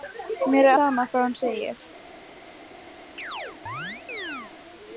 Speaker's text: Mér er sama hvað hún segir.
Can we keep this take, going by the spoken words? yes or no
yes